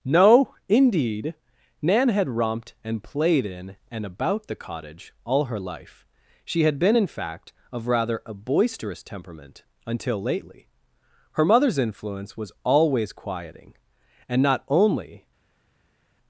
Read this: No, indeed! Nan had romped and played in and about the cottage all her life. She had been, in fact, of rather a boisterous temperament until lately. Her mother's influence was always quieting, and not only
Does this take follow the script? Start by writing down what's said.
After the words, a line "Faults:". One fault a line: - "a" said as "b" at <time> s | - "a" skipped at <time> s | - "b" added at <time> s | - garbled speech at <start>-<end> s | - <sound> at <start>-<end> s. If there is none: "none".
No, indeed! Nan had romped and played in and about the cottage all her life. She had been, in fact, of rather a boisterous temperament until lately. Her mother's influence was always quieting, and not only
Faults:
none